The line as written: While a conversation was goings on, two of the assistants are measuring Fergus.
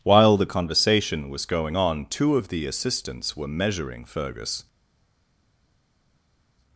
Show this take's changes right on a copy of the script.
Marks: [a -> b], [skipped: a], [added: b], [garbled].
While [a -> the] conversation was [goings -> going] on, two of the assistants [are -> were] measuring Fergus.